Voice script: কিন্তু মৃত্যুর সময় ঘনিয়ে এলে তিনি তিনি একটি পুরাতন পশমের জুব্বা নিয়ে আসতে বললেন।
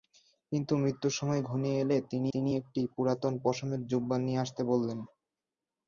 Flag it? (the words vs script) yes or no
no